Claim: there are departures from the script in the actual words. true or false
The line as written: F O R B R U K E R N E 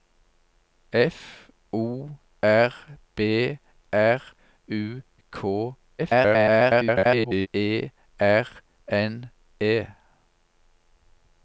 true